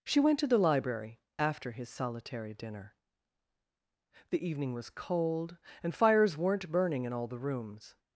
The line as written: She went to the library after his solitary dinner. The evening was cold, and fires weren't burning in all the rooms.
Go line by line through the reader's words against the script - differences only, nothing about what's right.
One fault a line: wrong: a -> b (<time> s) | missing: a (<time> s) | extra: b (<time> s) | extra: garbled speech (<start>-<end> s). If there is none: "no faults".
no faults